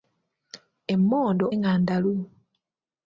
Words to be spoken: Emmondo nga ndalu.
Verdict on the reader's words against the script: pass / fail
pass